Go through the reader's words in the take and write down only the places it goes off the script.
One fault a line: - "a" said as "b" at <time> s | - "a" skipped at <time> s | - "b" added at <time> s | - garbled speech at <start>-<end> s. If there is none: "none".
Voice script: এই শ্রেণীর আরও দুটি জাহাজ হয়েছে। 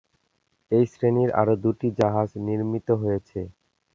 - "নির্মিত" added at 2.5 s